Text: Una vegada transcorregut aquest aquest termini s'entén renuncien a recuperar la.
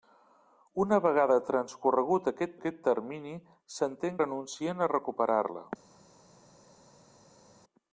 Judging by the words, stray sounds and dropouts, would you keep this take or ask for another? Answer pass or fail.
pass